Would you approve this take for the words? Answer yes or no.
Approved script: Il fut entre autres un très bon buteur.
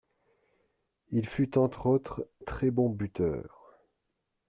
no